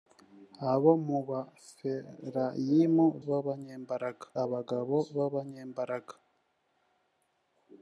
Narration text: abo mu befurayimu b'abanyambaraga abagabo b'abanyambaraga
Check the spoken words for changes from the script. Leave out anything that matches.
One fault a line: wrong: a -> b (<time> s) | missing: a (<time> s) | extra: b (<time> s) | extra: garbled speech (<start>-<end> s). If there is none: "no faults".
no faults